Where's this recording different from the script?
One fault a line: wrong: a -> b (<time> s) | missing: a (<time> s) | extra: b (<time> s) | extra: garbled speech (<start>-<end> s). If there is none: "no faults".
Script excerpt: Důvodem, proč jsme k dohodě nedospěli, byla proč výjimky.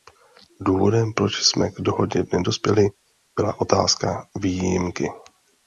wrong: proč -> otázka (3.6 s)